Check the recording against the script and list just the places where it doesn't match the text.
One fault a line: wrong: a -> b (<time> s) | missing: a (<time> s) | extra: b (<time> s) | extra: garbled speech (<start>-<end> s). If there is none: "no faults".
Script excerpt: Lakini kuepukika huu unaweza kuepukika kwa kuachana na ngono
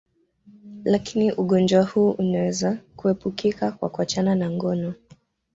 wrong: kuepukika -> ugonjwa (1.3 s)